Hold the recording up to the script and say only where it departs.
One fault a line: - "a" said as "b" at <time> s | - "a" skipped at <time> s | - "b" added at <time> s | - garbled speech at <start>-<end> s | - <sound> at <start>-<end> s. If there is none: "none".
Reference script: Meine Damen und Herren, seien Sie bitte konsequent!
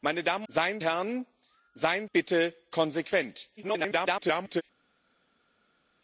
- "und" said as "seien" at 0.5 s
- "Sie" skipped at 2.1 s
- garbled speech at 3.6-4.6 s